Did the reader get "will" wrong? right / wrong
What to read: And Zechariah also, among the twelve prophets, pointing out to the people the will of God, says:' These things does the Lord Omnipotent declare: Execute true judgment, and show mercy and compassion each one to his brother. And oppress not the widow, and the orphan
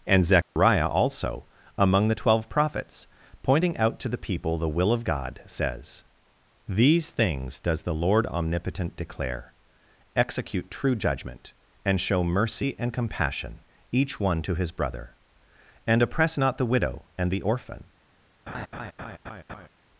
right